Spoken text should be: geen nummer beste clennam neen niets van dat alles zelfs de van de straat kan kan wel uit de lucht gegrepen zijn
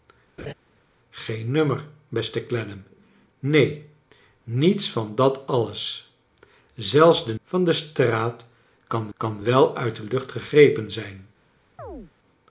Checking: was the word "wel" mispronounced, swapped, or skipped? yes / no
no